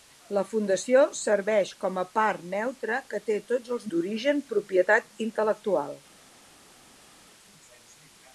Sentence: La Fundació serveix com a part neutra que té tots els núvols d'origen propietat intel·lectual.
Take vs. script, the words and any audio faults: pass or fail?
fail